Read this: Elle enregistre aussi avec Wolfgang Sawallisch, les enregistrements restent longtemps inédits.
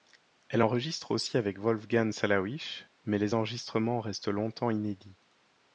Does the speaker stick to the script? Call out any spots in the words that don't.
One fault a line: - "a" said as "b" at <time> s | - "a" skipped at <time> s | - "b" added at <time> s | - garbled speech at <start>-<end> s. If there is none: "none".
- "mais" added at 3.0 s